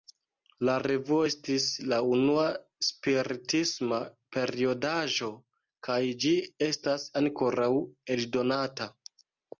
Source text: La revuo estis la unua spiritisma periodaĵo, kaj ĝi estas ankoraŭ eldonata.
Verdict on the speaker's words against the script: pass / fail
pass